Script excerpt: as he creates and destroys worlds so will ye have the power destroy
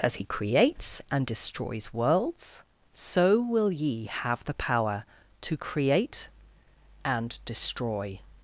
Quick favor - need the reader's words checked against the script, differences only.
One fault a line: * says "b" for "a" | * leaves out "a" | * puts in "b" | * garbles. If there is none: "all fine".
* puts in "to create and"